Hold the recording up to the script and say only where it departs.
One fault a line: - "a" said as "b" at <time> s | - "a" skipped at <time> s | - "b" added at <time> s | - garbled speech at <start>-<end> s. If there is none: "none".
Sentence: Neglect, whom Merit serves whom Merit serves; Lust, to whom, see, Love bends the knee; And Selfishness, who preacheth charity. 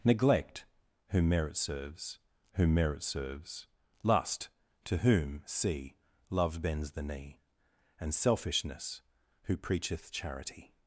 none